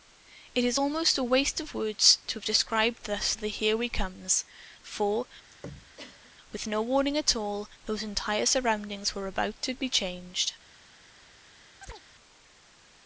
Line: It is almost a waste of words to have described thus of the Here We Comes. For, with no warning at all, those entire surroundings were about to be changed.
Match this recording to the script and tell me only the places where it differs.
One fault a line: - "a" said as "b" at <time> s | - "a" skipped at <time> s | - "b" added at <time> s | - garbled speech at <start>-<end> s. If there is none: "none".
none